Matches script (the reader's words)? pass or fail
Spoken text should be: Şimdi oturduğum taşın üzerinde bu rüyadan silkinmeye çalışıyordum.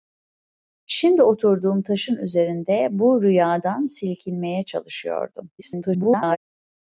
fail